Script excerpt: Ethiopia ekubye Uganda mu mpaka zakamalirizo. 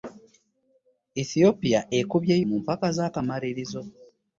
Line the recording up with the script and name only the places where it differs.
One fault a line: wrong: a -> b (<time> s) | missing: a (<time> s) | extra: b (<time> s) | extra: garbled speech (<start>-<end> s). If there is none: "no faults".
missing: Uganda (2.3 s)